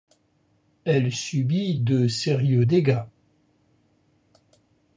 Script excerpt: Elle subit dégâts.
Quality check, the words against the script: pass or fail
fail